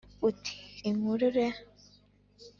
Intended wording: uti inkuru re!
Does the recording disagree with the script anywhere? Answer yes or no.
no